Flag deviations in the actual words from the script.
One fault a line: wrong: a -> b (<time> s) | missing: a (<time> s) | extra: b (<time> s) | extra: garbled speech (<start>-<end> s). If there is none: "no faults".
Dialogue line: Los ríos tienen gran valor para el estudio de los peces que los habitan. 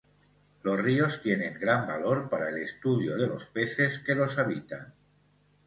no faults